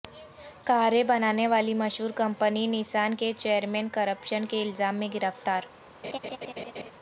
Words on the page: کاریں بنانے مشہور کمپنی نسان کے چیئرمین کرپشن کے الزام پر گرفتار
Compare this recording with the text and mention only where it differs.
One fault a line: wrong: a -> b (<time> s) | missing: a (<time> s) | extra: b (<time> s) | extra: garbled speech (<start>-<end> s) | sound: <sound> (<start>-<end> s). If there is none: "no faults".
extra: والی (1.5 s)
wrong: پر -> میں (5.0 s)
sound: laugh (6.0-6.9 s)